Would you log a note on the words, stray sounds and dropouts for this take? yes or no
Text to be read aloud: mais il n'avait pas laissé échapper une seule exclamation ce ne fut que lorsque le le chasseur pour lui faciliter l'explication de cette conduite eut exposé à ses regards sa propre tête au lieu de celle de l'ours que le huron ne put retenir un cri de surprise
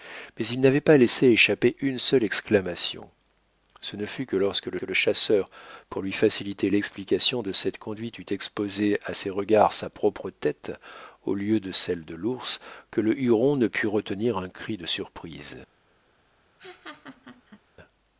yes